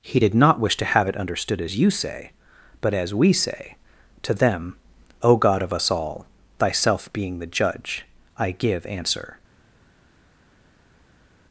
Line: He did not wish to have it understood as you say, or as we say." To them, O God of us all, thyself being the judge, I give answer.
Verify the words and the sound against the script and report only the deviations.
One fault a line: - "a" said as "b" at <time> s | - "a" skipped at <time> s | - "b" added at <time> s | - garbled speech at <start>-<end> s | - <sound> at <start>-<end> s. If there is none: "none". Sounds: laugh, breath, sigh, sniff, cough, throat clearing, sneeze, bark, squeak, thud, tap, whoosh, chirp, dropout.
- "or" said as "but" at 2.8 s